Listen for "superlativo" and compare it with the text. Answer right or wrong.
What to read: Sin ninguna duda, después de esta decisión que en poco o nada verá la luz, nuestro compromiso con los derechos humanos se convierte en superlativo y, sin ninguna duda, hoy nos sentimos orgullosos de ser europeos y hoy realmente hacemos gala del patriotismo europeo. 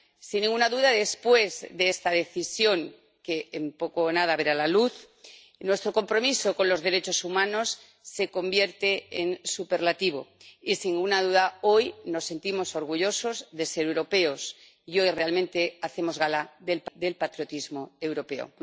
right